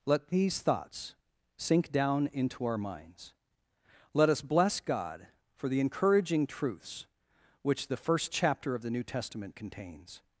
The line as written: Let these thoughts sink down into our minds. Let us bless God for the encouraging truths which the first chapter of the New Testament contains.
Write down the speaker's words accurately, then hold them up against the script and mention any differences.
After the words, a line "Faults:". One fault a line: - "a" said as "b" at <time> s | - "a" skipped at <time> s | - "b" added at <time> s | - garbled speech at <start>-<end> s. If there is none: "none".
Let these thoughts sink down into our minds. Let us bless God for the encouraging truths which the first chapter of the New Testament contains.
Faults:
none